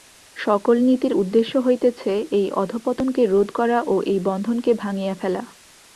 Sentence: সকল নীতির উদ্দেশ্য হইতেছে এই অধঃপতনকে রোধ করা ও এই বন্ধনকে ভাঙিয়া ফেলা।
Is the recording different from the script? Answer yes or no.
no